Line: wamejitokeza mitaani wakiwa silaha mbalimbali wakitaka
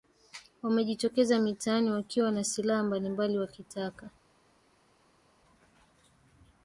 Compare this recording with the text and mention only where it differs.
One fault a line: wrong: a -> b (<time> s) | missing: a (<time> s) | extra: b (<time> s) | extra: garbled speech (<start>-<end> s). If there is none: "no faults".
extra: na (2.3 s)